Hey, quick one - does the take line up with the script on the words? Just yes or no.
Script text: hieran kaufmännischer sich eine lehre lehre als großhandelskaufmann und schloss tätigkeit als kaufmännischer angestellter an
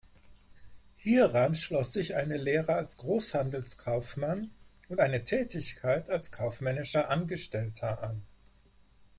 no